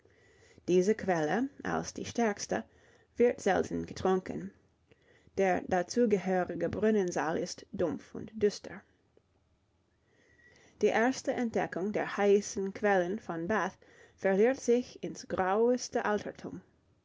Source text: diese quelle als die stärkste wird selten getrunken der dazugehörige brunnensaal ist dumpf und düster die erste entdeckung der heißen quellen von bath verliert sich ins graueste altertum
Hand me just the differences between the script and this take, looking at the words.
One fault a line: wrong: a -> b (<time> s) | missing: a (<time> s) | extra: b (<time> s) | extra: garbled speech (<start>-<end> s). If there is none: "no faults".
no faults